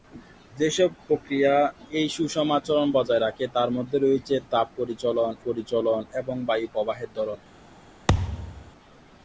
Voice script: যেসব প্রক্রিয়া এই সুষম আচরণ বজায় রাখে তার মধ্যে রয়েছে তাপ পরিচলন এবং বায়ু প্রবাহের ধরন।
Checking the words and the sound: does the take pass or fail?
fail